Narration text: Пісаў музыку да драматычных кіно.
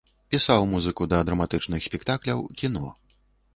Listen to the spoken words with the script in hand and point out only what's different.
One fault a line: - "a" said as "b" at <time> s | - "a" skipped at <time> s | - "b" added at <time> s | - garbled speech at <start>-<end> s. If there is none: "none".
- "спектакляў" added at 1.9 s